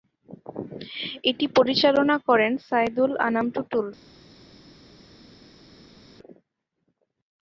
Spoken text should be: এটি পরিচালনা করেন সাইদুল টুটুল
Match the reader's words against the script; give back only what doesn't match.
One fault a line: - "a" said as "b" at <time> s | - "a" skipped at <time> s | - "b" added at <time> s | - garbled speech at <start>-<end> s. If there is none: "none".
- "আনাম" added at 3.3 s